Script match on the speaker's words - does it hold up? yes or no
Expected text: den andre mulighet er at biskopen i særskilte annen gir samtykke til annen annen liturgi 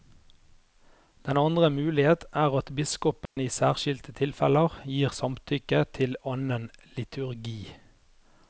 no